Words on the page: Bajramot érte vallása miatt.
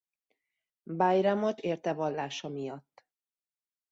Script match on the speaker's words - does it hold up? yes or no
yes